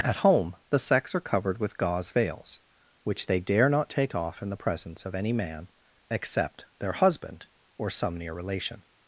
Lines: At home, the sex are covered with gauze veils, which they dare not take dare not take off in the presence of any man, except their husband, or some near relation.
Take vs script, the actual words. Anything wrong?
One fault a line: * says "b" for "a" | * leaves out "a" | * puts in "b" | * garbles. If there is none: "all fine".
* leaves out "dare not take"